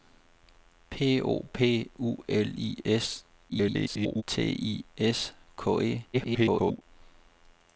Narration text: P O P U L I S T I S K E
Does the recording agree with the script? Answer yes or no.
no